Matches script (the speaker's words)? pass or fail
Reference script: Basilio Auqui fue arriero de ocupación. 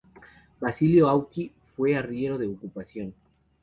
pass